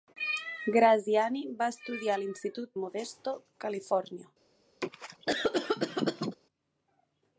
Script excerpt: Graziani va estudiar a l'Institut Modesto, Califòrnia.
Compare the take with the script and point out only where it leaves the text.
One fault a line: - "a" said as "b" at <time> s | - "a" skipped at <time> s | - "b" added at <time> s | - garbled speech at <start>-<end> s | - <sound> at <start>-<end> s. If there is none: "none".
- cough at 4.8-6.4 s